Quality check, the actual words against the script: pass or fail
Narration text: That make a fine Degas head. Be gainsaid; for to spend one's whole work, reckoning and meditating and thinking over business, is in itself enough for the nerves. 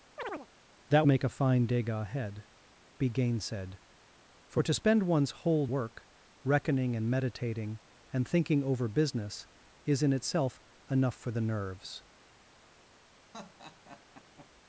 pass